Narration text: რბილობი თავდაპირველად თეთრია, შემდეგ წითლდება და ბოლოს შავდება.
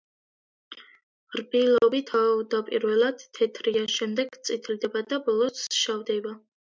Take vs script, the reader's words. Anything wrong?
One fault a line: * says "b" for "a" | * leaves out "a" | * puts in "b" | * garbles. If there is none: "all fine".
all fine